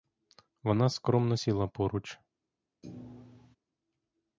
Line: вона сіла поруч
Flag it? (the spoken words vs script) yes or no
yes